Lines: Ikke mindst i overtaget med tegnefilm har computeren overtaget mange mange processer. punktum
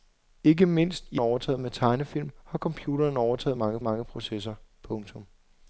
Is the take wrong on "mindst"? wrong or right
right